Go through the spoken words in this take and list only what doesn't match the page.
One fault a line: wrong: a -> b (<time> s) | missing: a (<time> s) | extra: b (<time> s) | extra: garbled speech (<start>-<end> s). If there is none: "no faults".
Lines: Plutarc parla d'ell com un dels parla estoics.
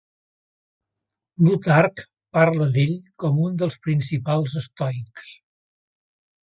wrong: parla -> principals (3.9 s)